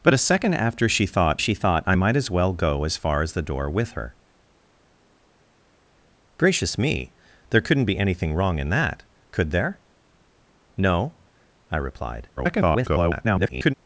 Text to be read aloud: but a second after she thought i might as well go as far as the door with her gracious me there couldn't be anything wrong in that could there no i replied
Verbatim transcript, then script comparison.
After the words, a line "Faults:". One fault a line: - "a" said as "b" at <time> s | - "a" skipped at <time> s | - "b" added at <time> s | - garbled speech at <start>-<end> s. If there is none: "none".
but a second after she thought she thought i might as well go as far as the door with her gracious me there couldn't be anything wrong in that could there no i replied [garbled]
Faults:
- "she thought" added at 1.4 s
- garbled speech at 12.4-13.7 s